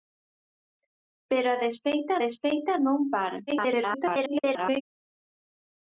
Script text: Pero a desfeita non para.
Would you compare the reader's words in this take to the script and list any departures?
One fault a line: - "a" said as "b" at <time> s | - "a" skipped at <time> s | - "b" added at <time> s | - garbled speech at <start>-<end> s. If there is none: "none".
- "desfeita" added at 2.2 s
- garbled speech at 3.5-4.8 s